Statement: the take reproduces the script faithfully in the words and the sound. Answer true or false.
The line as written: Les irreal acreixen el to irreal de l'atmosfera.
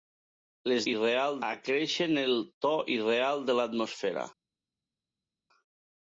true